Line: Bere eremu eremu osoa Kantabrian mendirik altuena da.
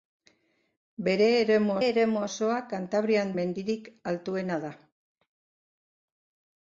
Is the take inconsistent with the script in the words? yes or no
no